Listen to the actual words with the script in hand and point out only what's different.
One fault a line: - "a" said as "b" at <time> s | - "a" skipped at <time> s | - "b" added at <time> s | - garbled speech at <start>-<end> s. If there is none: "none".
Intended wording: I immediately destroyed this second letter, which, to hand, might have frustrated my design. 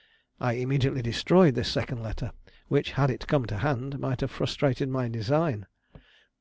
- "had it come" added at 2.9 s